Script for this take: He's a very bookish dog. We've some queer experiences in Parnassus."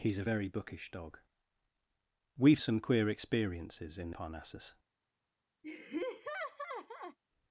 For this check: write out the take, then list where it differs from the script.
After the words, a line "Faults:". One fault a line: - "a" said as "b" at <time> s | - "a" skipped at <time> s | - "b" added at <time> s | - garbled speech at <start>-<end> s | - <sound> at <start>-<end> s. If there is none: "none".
He's a very bookish dog. We've some queer experiences in Parnassus."
Faults:
- laugh at 5.6-7.2 s